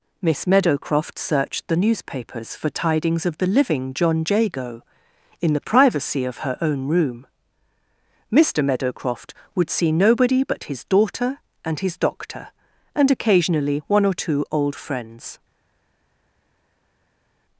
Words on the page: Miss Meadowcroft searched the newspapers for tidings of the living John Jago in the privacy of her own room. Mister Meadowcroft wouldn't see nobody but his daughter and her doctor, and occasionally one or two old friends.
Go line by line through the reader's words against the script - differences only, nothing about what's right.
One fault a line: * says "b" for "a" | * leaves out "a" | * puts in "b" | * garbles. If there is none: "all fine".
* says "would" for "wouldn't"
* says "his" for "her"